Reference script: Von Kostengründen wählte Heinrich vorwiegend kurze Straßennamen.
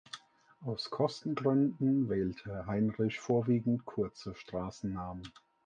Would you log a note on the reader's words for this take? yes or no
yes